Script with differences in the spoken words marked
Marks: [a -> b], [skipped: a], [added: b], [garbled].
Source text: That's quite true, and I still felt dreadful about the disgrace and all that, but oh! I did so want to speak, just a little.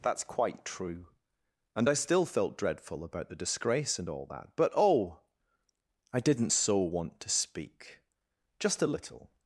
That's quite true, and I still felt dreadful about the disgrace and all that, but oh! I [did -> didn't] so want to speak, just a little.